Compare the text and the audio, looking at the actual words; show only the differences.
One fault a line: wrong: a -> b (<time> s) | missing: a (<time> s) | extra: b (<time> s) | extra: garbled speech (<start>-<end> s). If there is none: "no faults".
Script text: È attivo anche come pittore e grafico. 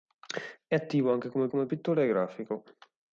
extra: come (1.5 s)